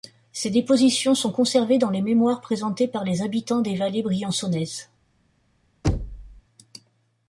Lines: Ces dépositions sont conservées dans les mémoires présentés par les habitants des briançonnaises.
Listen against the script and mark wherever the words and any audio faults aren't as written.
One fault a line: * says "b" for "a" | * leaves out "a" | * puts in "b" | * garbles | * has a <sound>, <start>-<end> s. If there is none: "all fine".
* puts in "vallées"
* has a thud, 5.8-6.4 s